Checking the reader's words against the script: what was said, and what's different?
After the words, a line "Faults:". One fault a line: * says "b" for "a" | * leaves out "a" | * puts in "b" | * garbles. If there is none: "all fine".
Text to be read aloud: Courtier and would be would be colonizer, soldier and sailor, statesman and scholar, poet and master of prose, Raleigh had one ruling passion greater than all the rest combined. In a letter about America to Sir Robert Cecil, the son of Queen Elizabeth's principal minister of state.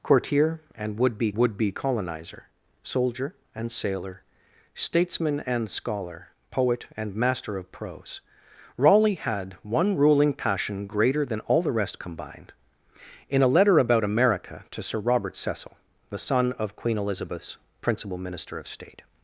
Courtier and would be would be colonizer, soldier and sailor, statesman and scholar, poet and master of prose, Raleigh had one ruling passion greater than all the rest combined. In a letter about America to Sir Robert Cecil, the son of Queen Elizabeth's principal minister of state.
Faults:
all fine